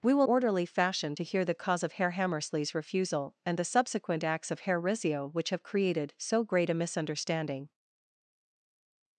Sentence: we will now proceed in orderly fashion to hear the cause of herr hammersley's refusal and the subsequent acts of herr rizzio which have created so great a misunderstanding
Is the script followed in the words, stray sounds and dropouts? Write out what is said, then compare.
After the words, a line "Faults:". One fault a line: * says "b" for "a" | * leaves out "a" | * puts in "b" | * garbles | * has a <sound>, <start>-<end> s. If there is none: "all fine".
we will orderly fashion to hear the cause of herr hammersley's refusal and the subsequent acts of herr rizzio which have created so great a misunderstanding
Faults:
* leaves out "now proceed in"